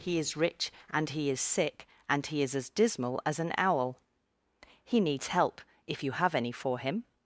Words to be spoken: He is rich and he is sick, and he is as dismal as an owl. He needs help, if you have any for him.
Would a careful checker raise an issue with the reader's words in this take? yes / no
no